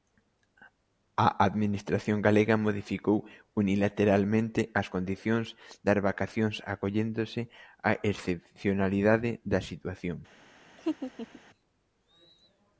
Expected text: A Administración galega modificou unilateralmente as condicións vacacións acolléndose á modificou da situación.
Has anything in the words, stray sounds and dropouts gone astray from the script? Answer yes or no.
yes